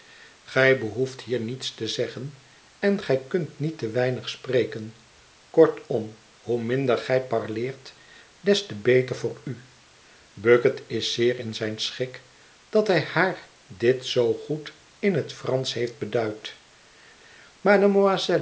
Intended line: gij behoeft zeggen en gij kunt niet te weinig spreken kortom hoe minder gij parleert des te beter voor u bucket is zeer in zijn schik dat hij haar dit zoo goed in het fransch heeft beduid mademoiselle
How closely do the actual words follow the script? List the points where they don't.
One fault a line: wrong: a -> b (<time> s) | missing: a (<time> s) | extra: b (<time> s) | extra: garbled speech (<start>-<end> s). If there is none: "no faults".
extra: hier niets te (1.2 s)